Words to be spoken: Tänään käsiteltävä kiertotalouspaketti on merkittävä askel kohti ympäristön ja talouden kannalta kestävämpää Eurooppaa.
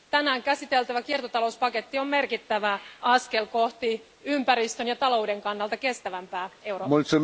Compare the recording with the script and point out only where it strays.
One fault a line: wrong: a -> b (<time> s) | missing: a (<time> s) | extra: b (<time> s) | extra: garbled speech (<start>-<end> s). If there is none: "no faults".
no faults